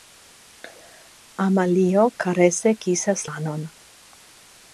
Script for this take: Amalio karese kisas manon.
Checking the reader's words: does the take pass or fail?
pass